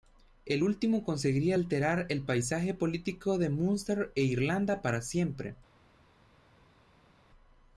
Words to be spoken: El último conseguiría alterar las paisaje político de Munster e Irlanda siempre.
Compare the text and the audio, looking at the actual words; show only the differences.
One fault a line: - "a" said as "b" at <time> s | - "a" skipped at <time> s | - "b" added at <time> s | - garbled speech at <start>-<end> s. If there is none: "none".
- "las" said as "el" at 2.1 s
- "para" added at 4.8 s